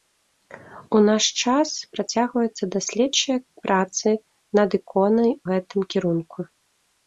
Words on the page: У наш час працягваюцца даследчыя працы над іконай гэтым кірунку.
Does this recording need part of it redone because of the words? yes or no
no